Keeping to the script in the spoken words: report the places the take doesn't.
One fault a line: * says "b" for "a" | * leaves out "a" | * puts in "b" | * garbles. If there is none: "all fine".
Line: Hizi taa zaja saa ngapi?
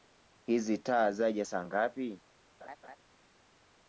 all fine